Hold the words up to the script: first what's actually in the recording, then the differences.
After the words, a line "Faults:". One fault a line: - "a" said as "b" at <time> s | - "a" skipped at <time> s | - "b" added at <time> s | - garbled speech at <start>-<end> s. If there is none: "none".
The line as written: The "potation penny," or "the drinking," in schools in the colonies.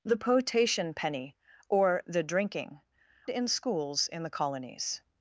The "potation penny," or "the drinking," in schools in the colonies.
Faults:
none